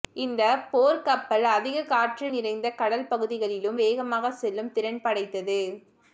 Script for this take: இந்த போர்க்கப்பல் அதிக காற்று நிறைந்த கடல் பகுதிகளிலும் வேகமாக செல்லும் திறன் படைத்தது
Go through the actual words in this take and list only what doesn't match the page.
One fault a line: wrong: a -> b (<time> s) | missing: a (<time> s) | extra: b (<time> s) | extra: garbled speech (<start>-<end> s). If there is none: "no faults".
no faults